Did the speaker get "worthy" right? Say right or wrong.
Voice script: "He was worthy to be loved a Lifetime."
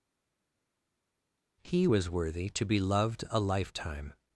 right